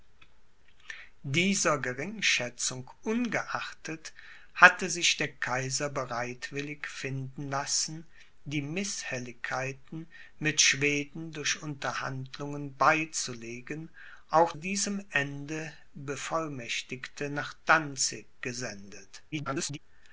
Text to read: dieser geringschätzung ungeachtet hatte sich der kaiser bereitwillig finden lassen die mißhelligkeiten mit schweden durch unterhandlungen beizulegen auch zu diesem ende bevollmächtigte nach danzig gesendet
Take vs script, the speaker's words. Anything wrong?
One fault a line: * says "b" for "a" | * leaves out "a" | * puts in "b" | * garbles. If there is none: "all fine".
* leaves out "zu"
* garbles